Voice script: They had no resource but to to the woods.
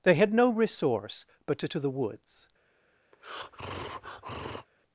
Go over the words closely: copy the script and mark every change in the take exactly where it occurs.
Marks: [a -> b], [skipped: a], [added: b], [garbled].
They had no resource but to to the woods.